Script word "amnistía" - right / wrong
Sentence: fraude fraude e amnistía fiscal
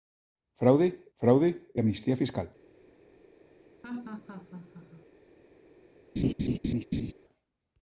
right